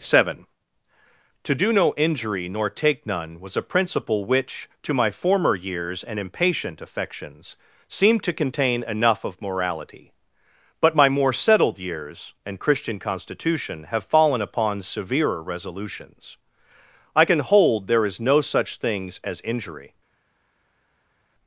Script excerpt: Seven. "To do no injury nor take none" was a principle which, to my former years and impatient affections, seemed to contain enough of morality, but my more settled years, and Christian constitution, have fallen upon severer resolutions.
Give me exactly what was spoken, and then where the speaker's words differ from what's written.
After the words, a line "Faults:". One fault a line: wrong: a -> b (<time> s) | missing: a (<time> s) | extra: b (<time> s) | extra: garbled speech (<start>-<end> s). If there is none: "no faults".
Seven. "To do no injury nor take none" was a principle which, to my former years and impatient affections, seemed to contain enough of morality, but my more settled years, and Christian constitution, have fallen upon severer resolutions. I can hold there is no such things as injury
Faults:
extra: I can hold there is no such things as injury (17.1 s)